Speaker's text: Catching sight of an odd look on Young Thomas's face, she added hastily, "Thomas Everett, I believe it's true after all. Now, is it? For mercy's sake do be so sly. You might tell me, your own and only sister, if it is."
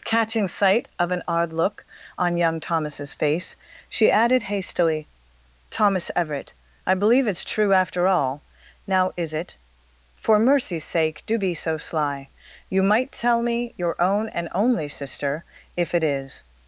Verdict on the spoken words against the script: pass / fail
pass